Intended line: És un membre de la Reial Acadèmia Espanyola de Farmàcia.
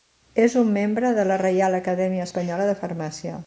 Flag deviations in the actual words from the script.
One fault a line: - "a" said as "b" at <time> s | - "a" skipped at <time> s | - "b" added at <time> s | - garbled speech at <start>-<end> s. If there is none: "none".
none